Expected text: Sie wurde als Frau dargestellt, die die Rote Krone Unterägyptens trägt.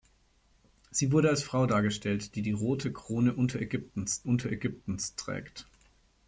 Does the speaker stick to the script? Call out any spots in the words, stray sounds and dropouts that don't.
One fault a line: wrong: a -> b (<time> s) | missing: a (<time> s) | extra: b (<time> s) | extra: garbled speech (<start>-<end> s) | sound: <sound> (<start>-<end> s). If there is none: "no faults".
extra: Unterägyptens (4.2 s)